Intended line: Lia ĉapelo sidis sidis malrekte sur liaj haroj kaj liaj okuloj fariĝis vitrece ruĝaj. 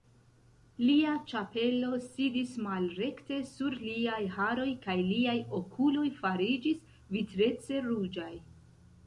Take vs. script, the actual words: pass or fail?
fail